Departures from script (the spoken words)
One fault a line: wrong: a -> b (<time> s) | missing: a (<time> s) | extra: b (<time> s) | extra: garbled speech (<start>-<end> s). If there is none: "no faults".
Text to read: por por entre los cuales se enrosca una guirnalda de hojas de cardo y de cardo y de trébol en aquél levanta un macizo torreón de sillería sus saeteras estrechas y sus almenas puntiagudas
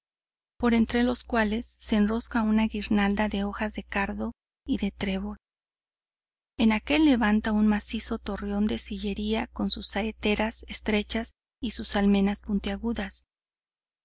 missing: por (0.7 s)
missing: cardo y de (4.9 s)
extra: con (9.5 s)